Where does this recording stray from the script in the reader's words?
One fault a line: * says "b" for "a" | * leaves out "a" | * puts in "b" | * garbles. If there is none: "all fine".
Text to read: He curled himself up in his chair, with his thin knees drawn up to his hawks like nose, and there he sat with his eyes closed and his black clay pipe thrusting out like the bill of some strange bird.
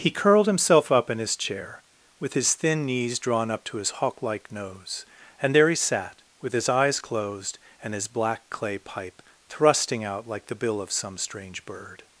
* says "hawk" for "hawks"